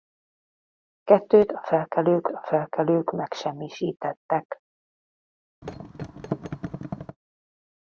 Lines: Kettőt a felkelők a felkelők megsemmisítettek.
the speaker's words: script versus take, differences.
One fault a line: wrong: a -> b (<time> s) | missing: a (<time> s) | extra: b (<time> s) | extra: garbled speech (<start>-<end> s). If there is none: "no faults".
no faults